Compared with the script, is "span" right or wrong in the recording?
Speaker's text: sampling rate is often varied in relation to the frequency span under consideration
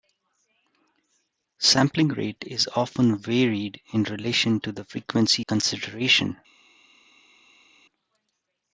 wrong